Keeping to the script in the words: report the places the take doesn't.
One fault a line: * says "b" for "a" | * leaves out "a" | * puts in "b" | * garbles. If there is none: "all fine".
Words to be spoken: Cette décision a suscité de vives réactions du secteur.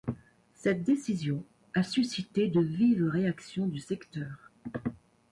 all fine